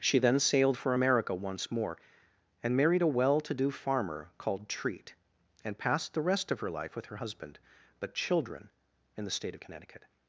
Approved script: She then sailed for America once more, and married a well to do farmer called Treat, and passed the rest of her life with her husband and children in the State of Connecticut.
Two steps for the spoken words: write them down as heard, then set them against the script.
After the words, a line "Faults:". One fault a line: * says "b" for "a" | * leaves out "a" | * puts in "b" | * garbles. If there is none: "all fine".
She then sailed for America once more, and married a well to do farmer called Treat, and passed the rest of her life with her husband but children in the State of Connecticut.
Faults:
* says "but" for "and"